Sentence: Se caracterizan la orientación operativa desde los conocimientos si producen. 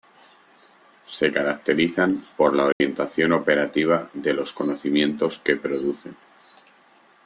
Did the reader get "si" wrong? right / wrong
wrong